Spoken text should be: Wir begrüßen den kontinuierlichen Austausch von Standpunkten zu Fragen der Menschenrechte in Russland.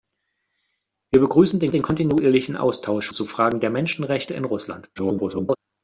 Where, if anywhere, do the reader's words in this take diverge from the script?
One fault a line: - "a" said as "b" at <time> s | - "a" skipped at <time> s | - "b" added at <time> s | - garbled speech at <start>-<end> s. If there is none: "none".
- "den" added at 1.7 s
- "von Standpunkten" skipped at 3.1 s
- garbled speech at 5.0-5.6 s